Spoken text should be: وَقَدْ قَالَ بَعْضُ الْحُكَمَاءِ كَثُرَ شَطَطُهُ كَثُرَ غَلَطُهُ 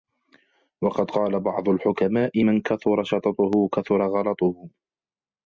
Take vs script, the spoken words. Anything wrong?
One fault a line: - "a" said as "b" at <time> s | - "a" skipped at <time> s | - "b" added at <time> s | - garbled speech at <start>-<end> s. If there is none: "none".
- "مَنْ" added at 2.4 s